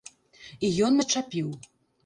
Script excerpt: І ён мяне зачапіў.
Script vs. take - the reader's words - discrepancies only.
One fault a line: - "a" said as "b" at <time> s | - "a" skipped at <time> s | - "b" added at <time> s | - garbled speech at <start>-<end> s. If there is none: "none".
- "мяне" skipped at 1.0 s